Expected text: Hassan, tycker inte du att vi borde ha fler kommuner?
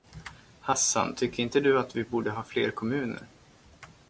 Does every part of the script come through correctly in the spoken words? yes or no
yes